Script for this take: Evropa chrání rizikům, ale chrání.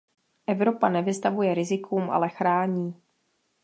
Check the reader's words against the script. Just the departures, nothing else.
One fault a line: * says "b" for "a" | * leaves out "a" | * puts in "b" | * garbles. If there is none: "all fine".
* says "nevystavuje" for "chrání"